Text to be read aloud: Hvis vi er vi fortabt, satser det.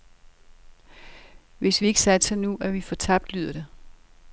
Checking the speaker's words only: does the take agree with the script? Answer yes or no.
no